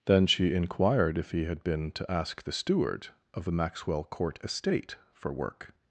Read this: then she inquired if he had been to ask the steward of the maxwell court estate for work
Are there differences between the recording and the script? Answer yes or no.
no